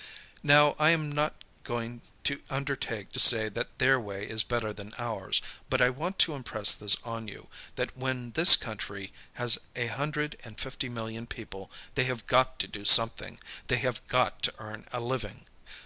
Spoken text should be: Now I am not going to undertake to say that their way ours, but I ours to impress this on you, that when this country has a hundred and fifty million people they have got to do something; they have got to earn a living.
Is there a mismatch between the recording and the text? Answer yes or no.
yes